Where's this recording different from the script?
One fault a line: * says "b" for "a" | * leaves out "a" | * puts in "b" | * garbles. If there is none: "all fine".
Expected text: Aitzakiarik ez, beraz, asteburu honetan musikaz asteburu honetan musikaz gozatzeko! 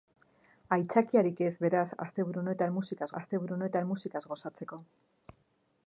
all fine